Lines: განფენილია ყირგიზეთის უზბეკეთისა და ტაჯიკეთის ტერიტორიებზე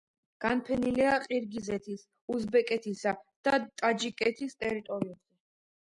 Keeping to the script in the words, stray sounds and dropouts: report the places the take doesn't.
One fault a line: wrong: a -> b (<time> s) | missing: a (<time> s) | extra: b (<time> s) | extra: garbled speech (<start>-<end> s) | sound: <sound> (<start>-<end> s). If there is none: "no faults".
no faults